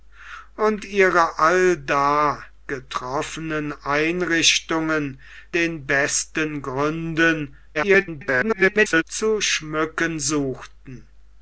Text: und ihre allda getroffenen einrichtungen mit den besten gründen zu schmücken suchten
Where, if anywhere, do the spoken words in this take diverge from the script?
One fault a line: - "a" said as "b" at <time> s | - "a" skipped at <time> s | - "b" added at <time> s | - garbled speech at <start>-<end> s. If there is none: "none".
- "mit" skipped at 5.2 s
- garbled speech at 7.7-9.0 s